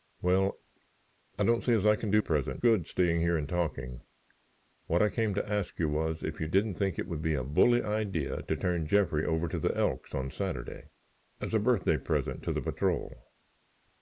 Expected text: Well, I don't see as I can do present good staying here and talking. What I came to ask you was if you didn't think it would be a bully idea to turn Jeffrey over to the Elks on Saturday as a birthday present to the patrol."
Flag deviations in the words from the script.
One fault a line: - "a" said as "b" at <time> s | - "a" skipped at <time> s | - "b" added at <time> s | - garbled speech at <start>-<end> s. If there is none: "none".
none